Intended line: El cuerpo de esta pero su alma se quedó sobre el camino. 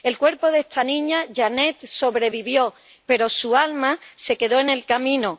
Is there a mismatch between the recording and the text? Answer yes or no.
yes